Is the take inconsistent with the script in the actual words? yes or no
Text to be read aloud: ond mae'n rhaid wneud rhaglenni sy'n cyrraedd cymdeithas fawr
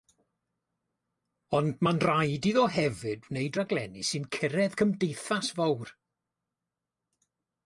yes